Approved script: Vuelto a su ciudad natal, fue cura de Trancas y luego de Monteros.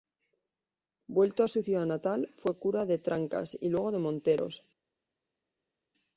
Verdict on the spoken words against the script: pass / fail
pass